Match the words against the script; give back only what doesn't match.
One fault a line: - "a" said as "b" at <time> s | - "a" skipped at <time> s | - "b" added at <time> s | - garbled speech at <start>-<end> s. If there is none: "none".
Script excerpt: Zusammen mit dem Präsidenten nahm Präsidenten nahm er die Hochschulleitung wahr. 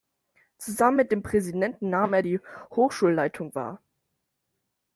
- "Präsidenten nahm" skipped at 2.1 s